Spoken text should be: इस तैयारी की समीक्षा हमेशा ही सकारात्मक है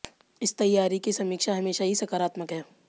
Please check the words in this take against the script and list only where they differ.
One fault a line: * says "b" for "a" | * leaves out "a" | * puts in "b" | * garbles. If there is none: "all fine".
all fine